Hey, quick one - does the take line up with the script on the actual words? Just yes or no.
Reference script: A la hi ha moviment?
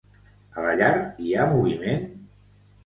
no